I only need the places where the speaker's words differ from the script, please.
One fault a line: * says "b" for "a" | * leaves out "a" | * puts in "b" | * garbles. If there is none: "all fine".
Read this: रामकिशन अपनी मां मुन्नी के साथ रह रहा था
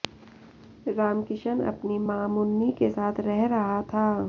all fine